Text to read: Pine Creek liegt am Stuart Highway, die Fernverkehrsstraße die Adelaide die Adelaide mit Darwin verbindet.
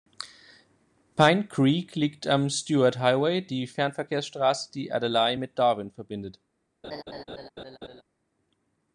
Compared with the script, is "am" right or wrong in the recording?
right